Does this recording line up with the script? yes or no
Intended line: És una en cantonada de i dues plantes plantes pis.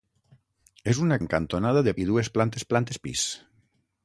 yes